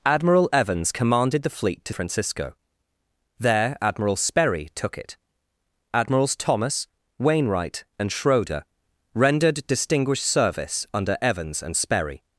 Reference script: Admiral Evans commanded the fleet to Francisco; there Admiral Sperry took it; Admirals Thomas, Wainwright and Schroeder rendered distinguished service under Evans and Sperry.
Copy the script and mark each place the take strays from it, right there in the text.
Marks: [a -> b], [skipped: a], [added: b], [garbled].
Admiral Evans commanded the fleet to Francisco; there Admiral Sperry took it; Admirals Thomas, Wainwright and Schroeder rendered distinguished service under Evans and Sperry.